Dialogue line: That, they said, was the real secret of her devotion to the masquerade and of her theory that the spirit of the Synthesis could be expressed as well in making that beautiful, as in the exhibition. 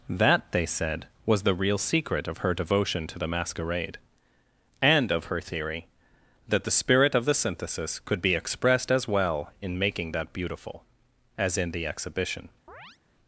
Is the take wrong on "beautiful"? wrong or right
right